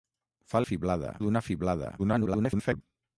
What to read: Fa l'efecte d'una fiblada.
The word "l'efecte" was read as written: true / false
false